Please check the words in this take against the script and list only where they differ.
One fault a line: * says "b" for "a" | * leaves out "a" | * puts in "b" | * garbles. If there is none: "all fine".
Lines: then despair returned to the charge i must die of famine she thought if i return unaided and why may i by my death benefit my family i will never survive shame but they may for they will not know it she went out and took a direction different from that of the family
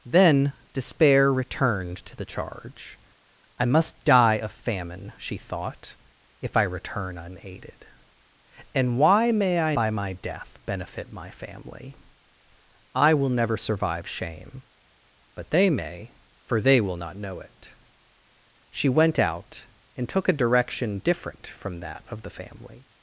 all fine